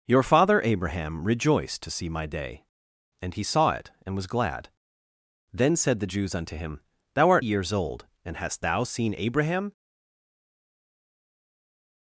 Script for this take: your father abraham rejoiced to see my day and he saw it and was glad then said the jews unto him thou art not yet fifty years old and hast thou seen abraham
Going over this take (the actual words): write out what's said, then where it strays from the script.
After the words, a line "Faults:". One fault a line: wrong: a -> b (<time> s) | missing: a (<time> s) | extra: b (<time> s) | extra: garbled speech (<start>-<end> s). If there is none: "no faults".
your father abraham rejoiced to see my day and he saw it and was glad then said the jews unto him thou art years old and hast thou seen abraham
Faults:
missing: not yet fifty (7.5 s)